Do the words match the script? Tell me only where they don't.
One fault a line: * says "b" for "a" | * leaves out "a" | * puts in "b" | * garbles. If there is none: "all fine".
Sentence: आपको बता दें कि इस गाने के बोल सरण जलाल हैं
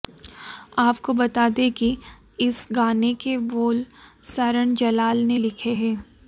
* puts in "ने लिखे"